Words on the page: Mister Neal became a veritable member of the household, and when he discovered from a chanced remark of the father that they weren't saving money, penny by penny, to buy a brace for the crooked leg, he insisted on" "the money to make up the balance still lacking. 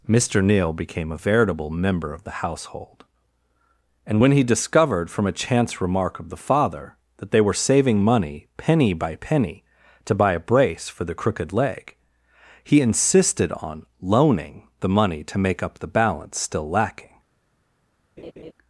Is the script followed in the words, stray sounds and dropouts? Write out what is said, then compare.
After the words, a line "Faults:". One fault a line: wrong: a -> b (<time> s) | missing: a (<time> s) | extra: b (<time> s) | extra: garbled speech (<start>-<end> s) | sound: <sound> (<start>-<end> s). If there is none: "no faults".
Mister Neal became a veritable member of the household, and when he discovered from a chance remark of the father that they were saving money, penny by penny, to buy a brace for the crooked leg, he insisted on "loaning" the money to make up the balance still lacking.
Faults:
wrong: chanced -> chance (5.3 s)
wrong: weren't -> were (7.4 s)
extra: loaning (14.0 s)
sound: laugh (18.2-18.5 s)